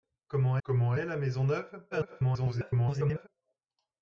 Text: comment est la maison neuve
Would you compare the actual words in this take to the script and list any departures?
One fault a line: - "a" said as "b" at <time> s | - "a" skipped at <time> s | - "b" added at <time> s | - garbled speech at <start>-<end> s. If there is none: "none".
- "comment" added at 0.6 s
- garbled speech at 1.9-3.3 s